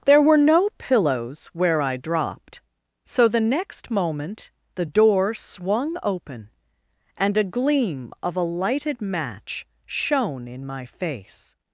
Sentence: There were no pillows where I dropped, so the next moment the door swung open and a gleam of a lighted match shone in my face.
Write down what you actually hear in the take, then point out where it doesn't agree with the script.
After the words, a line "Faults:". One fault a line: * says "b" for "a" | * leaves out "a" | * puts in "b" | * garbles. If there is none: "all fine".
There were no pillows where I dropped, so the next moment the door swung open and a gleam of a lighted match shone in my face.
Faults:
all fine